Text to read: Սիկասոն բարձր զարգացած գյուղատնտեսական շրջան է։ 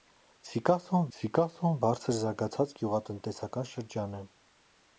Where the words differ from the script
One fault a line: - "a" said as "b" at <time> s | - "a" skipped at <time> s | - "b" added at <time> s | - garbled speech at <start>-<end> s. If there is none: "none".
- "սիկասոն" added at 1.2 s